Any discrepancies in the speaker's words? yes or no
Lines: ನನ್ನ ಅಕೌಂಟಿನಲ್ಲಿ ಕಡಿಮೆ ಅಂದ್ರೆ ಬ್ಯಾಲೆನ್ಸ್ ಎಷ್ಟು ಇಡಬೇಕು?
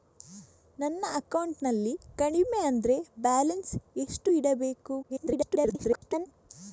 yes